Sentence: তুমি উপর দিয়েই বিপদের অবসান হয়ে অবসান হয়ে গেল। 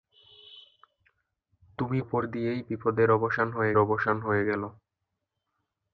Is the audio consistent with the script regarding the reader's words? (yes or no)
yes